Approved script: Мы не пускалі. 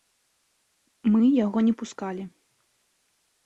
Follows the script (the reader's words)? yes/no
no